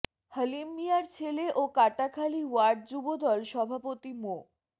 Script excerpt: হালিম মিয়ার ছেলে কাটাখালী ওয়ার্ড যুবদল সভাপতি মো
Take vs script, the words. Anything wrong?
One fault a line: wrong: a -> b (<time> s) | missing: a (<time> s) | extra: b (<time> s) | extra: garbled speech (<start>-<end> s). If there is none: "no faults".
extra: ও (1.5 s)